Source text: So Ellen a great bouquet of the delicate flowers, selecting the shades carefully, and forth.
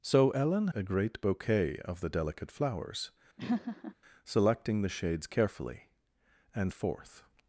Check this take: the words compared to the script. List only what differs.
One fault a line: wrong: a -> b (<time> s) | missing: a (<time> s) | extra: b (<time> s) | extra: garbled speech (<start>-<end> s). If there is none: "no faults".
no faults